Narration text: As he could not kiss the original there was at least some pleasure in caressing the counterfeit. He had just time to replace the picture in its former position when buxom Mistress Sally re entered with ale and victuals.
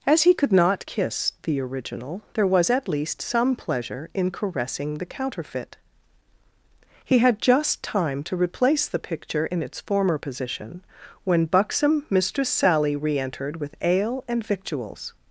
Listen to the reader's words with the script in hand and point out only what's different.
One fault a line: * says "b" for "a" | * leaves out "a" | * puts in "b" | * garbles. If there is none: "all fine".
all fine